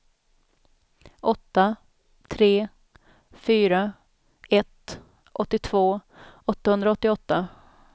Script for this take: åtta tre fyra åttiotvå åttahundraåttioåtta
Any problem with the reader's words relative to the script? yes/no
yes